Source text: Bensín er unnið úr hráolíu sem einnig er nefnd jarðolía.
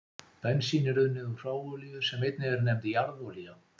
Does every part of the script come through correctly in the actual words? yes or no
yes